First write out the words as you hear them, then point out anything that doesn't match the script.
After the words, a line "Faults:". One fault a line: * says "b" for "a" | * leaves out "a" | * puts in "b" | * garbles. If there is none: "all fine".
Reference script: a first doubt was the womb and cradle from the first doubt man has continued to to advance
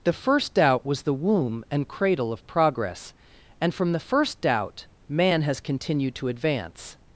the first doubt was the womb and cradle of progress and from the first doubt man has continued to advance
Faults:
* says "the" for "a"
* puts in "of progress and"
* leaves out "to"